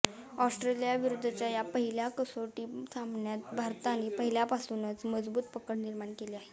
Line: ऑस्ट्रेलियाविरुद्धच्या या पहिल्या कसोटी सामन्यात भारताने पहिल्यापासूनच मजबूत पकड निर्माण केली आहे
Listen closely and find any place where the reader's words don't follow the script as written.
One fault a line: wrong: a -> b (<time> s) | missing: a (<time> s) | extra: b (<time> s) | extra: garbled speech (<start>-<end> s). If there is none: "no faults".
no faults